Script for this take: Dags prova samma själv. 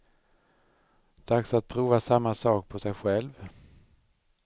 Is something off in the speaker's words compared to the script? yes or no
yes